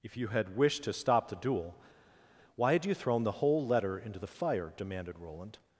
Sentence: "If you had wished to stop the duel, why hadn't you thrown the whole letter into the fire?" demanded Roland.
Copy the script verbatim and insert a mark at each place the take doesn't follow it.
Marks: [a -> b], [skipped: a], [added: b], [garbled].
"If you had wished to stop the duel, why [hadn't -> had] you thrown the whole letter into the fire?" demanded Roland.